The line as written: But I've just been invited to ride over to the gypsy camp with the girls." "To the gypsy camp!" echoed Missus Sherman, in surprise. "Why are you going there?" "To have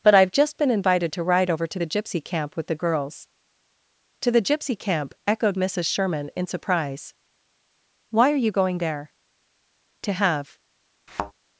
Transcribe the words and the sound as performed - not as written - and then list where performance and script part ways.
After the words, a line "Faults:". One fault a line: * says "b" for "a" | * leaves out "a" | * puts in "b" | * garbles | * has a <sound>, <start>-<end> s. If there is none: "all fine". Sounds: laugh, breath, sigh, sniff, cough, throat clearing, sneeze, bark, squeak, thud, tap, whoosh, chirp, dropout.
But I've just been invited to ride over to the gypsy camp with the girls." "To the gypsy camp!" echoed Missus Sherman, in surprise. "Why are you going there?" "To have
Faults:
* has a thud, 11.1-11.3 s